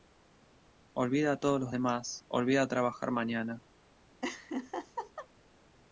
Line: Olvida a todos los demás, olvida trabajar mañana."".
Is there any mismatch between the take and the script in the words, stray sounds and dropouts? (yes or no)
yes